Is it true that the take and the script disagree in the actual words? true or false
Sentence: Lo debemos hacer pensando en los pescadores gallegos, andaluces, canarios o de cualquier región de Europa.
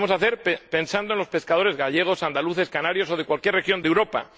false